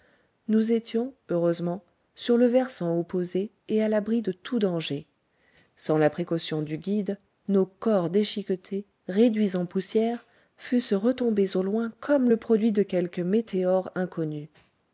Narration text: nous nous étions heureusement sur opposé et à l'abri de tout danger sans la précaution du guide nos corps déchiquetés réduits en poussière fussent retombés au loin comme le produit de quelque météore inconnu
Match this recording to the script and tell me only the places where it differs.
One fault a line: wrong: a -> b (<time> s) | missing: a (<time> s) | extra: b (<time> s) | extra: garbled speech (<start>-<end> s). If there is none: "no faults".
missing: nous (0.7 s)
extra: le versant (2.4 s)